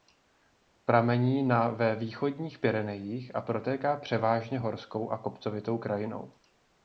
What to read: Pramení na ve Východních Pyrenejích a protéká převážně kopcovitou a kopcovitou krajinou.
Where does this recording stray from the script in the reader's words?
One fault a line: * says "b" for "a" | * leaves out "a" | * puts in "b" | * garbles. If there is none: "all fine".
* says "horskou" for "kopcovitou"